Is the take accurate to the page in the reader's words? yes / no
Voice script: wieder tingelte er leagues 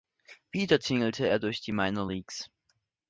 no